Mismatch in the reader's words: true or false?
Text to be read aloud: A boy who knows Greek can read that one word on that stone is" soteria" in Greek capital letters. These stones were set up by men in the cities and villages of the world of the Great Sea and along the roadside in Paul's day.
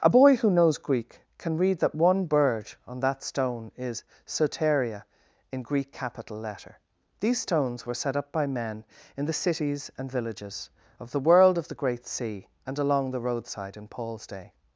true